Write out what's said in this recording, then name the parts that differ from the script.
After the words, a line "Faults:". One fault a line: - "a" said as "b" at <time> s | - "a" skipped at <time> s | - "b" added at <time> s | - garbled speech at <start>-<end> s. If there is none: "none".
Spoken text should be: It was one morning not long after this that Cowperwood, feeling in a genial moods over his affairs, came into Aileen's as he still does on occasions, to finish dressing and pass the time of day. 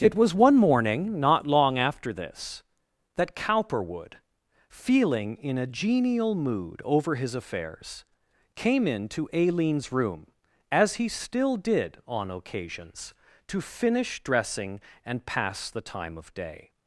It was one morning not long after this that Cowperwood, feeling in a genial mood over his affairs, came into Aileen's room, as he still did on occasions, to finish dressing and pass the time of day.
Faults:
- "moods" said as "mood" at 6.4 s
- "room" added at 9.9 s
- "does" said as "did" at 11.6 s